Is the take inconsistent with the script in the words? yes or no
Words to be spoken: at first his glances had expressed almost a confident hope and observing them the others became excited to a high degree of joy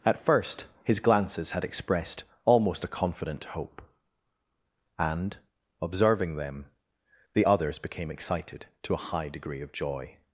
no